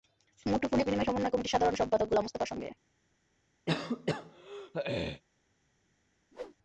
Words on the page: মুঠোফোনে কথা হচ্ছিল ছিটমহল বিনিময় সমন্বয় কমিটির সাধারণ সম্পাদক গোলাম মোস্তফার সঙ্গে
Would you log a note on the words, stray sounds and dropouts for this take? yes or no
yes